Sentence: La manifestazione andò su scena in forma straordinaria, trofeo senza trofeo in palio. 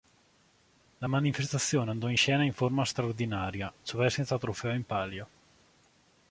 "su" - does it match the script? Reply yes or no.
no